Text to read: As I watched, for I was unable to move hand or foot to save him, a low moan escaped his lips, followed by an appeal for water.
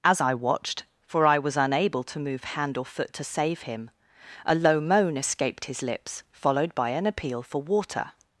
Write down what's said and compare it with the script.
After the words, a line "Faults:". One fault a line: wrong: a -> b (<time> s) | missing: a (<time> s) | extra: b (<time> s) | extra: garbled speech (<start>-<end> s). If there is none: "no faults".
As I watched, for I was unable to move hand or foot to save him, a low moan escaped his lips, followed by an appeal for water.
Faults:
no faults